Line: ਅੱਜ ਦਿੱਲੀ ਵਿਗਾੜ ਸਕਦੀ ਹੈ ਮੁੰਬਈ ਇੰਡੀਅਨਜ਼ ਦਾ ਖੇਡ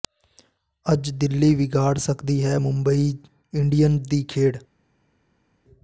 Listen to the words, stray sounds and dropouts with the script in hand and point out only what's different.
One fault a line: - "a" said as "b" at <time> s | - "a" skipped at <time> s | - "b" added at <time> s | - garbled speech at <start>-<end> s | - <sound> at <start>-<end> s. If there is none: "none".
- "ਦਾ" said as "ਦੀ" at 4.1 s